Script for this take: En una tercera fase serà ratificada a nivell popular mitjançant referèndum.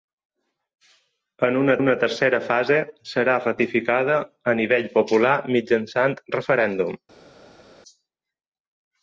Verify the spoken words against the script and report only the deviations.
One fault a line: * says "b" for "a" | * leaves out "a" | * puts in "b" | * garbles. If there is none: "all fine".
* puts in "una"